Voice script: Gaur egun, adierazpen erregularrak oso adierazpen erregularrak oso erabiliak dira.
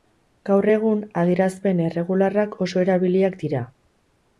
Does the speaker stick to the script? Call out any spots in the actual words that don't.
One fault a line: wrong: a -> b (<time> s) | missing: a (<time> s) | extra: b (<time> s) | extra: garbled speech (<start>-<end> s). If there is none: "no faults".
missing: adierazpen erregularrak oso (2.9 s)